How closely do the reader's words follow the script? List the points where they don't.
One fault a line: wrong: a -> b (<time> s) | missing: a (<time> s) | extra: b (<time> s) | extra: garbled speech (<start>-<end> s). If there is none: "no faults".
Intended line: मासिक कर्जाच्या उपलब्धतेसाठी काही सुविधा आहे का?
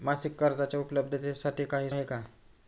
missing: सुविधा (1.9 s)